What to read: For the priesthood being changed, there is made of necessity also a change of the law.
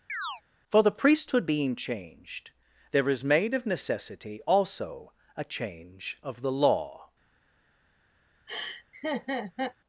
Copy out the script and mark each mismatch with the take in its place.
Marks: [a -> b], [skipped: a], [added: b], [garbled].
For the priesthood being changed, there is made of necessity also a change of the law.